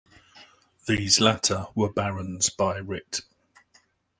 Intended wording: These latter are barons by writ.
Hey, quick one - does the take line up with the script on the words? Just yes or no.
no